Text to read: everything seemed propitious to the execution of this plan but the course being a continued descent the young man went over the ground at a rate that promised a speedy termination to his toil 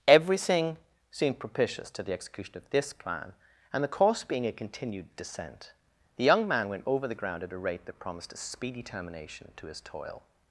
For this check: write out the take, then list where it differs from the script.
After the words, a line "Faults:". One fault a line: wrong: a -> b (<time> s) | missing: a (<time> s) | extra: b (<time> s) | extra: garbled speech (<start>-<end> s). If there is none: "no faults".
everything seemed propitious to the execution of this plan and the course being a continued descent the young man went over the ground at a rate that promised a speedy termination to his toil
Faults:
wrong: but -> and (3.7 s)